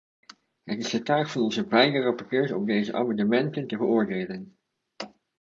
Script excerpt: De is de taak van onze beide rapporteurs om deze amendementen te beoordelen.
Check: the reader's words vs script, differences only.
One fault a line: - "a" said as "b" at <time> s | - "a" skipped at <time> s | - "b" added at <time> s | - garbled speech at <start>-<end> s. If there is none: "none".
- "De" said as "Het" at 0.6 s